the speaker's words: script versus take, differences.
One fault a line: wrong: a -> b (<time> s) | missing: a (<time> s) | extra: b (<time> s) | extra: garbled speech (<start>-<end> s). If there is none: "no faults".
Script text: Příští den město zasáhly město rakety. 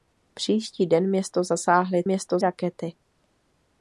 no faults